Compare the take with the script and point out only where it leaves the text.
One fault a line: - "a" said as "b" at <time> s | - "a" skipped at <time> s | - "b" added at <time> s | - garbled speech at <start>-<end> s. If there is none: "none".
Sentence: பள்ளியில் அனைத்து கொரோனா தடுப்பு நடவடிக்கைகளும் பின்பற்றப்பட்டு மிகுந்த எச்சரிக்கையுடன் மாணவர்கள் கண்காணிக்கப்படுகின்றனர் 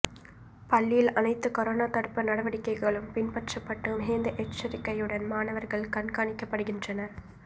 none